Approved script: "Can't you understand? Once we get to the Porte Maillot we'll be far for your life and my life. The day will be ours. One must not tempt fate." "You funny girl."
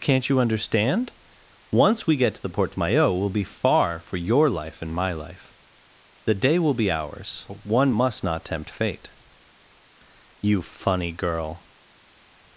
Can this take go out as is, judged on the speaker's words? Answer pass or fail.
pass